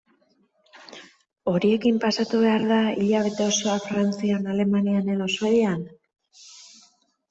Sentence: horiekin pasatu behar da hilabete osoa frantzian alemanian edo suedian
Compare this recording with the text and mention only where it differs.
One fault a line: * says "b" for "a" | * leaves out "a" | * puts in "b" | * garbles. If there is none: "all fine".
all fine